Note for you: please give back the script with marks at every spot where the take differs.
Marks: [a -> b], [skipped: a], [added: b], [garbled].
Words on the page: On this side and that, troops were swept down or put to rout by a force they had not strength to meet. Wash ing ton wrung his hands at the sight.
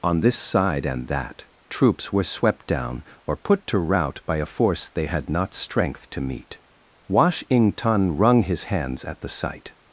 On this side and that, troops were swept down or put to rout by a force they had not strength to meet. Wash ing ton wrung his hands at the sight.